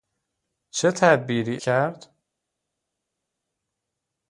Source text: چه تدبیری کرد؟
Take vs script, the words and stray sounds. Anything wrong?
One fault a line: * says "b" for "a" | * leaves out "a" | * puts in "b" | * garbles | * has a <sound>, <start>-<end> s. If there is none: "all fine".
all fine